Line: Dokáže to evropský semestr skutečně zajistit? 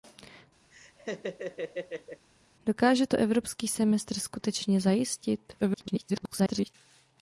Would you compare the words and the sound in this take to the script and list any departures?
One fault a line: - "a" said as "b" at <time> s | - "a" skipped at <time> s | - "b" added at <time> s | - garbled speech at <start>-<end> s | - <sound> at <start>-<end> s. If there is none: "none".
- laugh at 0.7-2.3 s
- garbled speech at 5.6-6.7 s